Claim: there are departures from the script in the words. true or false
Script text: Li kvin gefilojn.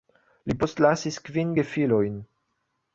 true